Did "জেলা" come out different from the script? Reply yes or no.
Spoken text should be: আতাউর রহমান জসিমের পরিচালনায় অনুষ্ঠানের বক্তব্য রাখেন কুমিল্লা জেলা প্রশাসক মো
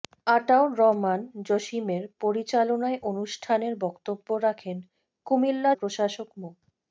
yes